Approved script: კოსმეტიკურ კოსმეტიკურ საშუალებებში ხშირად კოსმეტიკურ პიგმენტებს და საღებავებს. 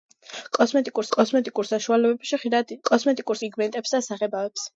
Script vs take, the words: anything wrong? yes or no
no